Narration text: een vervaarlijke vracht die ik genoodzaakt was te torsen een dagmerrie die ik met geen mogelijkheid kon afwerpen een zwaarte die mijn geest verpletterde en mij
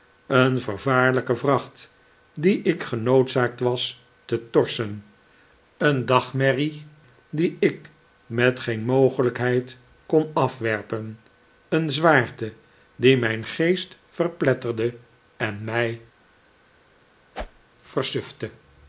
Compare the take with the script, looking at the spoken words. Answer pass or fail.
pass